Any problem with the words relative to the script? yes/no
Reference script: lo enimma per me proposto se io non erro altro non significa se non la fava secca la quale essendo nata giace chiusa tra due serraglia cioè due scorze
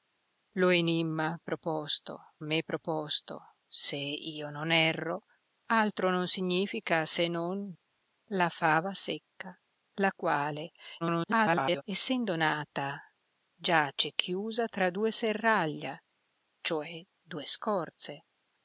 yes